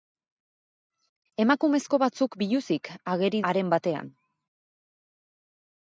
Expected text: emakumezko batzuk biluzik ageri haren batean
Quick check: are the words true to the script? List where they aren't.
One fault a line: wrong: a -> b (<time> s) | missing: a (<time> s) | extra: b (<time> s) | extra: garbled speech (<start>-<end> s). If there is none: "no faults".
no faults